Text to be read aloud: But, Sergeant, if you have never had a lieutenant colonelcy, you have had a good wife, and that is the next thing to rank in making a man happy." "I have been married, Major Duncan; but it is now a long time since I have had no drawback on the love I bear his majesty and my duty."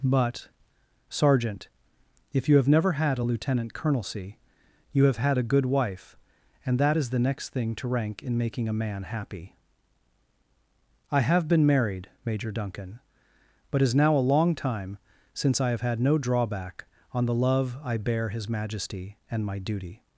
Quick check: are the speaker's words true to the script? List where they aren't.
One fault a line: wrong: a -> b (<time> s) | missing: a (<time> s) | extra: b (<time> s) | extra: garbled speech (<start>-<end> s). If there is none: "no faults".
missing: it (13.8 s)